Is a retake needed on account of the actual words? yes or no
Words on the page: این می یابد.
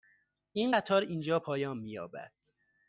yes